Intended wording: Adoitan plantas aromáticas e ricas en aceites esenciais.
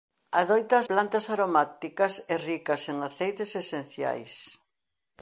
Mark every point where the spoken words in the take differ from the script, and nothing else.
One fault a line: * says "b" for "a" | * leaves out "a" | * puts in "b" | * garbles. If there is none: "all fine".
all fine